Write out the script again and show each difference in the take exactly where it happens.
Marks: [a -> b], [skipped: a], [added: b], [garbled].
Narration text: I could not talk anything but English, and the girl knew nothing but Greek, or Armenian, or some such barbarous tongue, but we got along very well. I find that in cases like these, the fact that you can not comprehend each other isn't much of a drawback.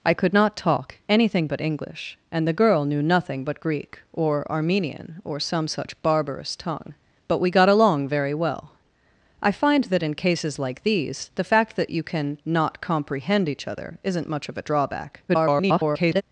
I could not talk anything but English, and the girl knew nothing but Greek, or Armenian, or some such barbarous tongue, but we got along very well. I find that in cases like these, the fact that you can not comprehend each other isn't much of a drawback. [garbled]